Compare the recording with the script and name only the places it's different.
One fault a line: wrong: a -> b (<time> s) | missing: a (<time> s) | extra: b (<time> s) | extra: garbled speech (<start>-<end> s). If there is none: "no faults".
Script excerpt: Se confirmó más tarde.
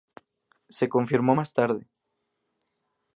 no faults